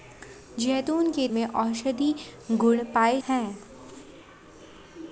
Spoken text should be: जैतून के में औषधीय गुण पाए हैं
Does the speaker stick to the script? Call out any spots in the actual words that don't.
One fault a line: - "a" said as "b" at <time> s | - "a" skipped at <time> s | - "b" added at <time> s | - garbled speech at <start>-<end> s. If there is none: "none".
none